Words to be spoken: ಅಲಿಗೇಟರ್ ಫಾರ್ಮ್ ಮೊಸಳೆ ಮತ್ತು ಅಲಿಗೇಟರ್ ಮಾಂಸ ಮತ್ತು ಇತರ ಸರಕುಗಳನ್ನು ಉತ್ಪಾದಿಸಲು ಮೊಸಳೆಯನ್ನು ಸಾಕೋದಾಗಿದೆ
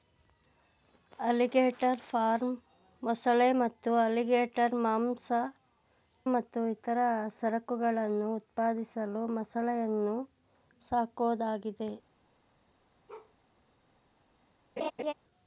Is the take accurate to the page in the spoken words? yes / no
yes